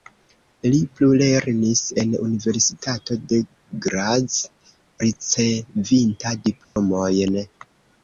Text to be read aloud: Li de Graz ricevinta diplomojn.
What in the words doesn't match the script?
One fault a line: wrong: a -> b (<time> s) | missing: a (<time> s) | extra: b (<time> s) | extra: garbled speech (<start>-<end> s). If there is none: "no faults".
extra: plulernis en universitato (1.0 s)